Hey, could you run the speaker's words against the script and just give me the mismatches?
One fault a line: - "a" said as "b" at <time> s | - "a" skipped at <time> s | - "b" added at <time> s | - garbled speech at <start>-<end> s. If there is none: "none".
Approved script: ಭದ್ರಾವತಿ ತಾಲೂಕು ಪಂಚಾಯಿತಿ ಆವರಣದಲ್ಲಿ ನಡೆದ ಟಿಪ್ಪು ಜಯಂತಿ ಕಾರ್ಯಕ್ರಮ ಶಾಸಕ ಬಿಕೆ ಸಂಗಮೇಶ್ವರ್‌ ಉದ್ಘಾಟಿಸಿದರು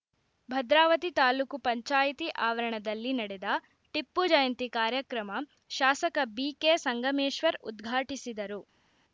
none